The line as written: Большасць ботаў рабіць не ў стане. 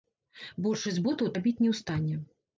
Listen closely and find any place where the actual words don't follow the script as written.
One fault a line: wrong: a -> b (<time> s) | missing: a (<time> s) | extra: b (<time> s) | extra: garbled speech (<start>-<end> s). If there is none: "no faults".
no faults